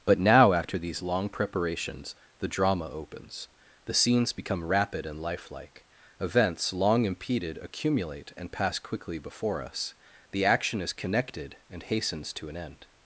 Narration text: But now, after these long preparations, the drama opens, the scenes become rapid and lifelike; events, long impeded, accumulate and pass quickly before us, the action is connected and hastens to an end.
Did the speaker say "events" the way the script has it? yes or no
yes